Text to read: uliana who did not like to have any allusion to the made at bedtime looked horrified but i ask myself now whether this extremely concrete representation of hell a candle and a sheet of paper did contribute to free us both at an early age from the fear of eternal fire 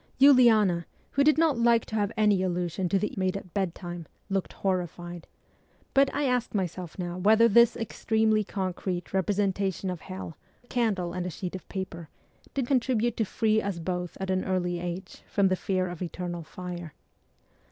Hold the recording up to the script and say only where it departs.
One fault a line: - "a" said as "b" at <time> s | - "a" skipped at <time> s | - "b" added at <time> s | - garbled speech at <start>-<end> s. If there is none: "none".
none